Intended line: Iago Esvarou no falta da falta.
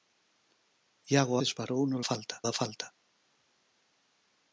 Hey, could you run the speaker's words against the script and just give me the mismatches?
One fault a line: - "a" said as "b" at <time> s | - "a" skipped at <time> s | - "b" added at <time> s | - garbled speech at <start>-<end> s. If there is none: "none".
none